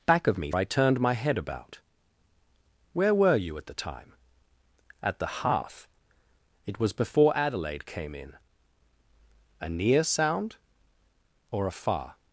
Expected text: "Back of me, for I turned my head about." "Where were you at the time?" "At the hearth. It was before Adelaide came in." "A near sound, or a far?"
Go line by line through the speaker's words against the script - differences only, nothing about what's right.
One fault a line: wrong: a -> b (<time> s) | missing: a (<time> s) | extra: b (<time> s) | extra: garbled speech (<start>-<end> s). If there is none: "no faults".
missing: for (0.5 s)